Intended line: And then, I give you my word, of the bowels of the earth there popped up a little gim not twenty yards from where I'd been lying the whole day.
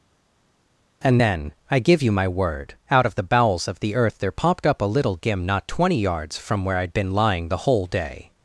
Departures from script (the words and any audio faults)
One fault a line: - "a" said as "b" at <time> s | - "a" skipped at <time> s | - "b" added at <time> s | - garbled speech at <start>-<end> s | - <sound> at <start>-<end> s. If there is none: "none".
- "out" added at 2.9 s